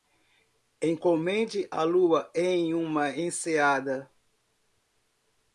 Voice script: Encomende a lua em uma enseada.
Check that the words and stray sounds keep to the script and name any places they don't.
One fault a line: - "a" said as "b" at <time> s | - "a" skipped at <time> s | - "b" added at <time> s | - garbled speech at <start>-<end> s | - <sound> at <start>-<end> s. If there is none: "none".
none